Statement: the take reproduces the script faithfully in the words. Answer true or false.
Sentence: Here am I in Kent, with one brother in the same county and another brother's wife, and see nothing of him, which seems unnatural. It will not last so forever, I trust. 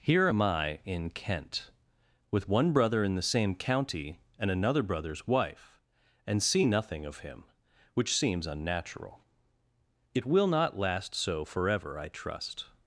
true